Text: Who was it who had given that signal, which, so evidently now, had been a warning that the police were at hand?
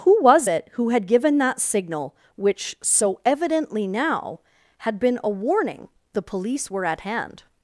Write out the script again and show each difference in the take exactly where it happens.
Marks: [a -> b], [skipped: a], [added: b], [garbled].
Who was it who had given that signal, which, so evidently now, had been a warning [skipped: that] the police were at hand?